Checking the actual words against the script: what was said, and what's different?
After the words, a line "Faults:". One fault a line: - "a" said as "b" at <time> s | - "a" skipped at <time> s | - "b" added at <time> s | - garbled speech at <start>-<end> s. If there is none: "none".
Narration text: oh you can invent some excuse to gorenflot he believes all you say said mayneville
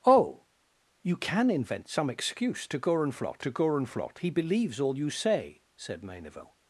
oh you can invent some excuse to gorenflot to gorenflot he believes all you say said mayneville
Faults:
- "to gorenflot" added at 3.4 s